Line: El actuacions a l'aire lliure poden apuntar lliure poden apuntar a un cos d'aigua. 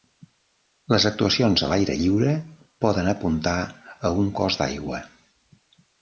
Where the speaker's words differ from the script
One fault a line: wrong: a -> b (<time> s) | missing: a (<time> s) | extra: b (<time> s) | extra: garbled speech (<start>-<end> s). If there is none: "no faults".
wrong: El -> Les (0.9 s)
missing: lliure poden apuntar (3.6 s)